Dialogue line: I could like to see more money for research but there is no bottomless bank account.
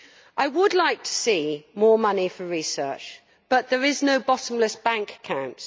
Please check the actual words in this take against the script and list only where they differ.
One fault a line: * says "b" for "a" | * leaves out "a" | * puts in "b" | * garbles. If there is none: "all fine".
* says "would" for "could"